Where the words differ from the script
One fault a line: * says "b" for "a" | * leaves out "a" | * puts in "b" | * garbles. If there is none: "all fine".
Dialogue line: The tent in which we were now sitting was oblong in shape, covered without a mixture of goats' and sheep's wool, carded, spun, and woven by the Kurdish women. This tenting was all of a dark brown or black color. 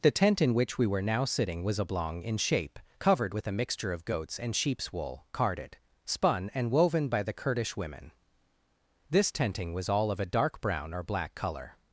* says "with" for "without"